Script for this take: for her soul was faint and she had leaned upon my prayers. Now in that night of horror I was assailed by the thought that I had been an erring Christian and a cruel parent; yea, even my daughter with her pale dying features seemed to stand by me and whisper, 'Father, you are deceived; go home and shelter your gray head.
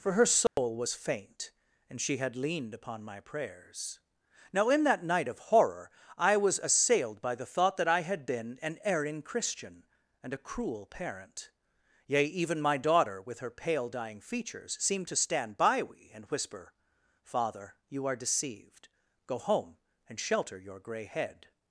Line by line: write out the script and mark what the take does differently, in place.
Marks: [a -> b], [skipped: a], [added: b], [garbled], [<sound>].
for her soul [dropout] was faint and she had leaned upon my prayers. Now in that night of horror I was assailed by the thought that I had been an erring Christian and a cruel parent; yea, even my daughter with her pale dying features seemed to stand by [me -> we] and whisper, 'Father, you are deceived; go home and shelter your gray head.